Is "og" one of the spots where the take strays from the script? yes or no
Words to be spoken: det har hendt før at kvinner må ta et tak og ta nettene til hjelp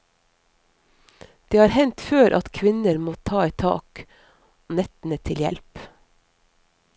yes